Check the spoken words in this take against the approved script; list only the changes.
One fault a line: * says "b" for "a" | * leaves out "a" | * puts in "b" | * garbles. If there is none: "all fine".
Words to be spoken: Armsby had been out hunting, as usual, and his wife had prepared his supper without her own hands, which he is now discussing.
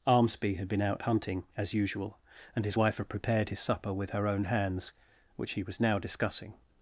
* says "with" for "without"
* says "was" for "is"